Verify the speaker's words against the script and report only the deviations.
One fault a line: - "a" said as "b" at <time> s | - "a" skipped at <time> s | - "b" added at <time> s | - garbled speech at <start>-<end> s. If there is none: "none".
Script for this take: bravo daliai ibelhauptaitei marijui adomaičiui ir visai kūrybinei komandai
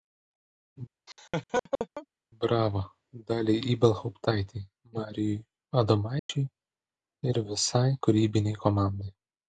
none